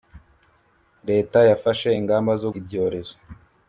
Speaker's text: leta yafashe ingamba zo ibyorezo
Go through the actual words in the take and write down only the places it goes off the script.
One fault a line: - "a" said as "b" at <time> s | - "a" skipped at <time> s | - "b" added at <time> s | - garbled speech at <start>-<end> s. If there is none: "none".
none